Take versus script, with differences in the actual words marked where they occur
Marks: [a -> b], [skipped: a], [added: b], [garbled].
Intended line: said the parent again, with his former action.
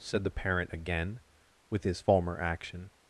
said the parent again, with his former action.